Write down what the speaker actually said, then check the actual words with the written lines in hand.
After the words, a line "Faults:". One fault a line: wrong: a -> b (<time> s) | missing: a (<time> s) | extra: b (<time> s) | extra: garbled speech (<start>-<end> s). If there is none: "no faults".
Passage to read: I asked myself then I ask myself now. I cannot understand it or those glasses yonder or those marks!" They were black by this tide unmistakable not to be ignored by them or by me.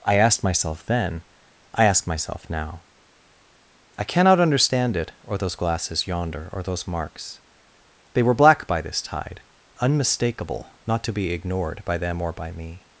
I asked myself then I ask myself now. I cannot understand it or those glasses yonder or those marks!" They were black by this tide unmistakable not to be ignored by them or by me.
Faults:
no faults